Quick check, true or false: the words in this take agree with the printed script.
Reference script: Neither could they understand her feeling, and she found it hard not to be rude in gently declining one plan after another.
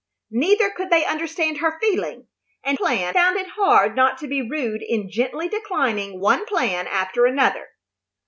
false